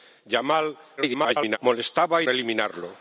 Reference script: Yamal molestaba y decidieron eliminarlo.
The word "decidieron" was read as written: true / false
false